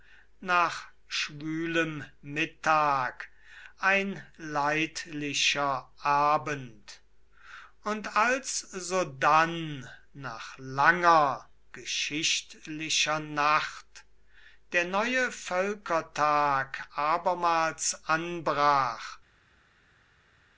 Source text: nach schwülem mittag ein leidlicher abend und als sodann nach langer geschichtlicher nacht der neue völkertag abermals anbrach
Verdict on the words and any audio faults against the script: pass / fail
pass